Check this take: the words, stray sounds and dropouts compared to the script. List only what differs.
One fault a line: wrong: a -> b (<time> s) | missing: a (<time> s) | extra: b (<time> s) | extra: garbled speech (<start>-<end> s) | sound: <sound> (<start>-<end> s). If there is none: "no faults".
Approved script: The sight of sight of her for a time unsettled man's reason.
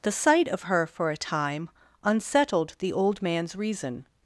missing: sight of (0.6 s)
extra: the old (2.8 s)